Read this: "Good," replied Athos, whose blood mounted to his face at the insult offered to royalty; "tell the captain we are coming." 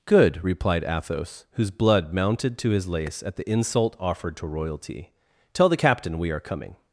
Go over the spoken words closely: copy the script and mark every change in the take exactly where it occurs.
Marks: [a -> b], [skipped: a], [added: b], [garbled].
"Good," replied Athos, whose blood mounted to his [face -> lace] at the insult offered to royalty; "tell the captain we are coming."